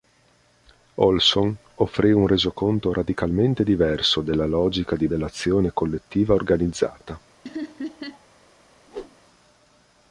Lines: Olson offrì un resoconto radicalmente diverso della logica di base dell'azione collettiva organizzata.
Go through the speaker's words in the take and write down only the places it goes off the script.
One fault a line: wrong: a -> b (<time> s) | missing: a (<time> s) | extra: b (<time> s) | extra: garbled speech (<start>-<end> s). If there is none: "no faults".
missing: base (5.1 s)